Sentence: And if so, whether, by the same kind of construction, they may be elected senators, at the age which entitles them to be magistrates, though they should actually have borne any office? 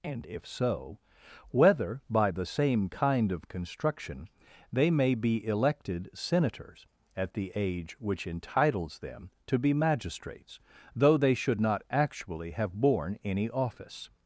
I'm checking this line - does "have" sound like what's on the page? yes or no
yes